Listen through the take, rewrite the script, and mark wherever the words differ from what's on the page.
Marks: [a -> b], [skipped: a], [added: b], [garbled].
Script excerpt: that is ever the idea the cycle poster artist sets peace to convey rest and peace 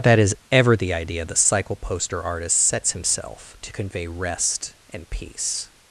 that is ever the idea the cycle poster artist sets [peace -> himself] to convey rest and peace